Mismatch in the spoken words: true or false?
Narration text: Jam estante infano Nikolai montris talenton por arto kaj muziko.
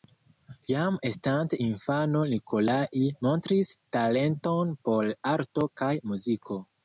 false